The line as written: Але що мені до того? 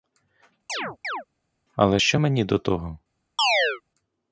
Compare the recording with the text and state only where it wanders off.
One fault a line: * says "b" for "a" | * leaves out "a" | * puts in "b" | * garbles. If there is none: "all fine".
all fine